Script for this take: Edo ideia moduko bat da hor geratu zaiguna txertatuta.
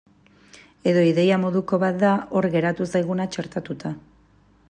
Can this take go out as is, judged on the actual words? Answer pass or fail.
pass